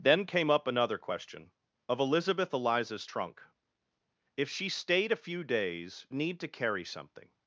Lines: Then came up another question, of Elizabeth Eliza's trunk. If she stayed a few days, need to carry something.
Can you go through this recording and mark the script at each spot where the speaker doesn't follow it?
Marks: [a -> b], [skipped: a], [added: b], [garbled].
Then came up another question, of Elizabeth Eliza's trunk. If she stayed a few days, need to carry something.